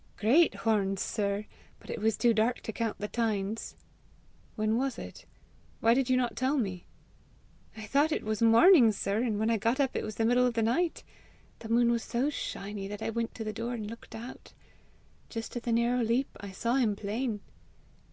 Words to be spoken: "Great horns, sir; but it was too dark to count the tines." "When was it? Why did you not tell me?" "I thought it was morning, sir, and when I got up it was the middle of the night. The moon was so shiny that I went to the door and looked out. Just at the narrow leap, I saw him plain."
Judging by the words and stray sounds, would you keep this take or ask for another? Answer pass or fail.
pass